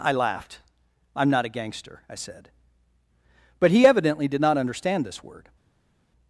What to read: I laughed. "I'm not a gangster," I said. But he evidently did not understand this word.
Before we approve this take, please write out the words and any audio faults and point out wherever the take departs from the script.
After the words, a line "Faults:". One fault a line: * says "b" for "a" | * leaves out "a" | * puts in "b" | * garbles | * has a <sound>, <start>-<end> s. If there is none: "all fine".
I laughed. "I'm not a gangster," I said. But he evidently did not understand this word.
Faults:
all fine